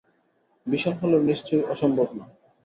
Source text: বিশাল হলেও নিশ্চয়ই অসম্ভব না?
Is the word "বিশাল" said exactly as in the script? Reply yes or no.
yes